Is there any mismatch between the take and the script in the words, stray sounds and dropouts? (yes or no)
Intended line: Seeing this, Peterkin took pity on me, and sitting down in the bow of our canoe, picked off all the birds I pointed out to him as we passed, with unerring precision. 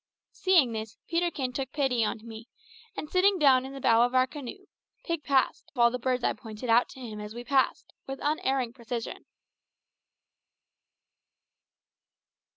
yes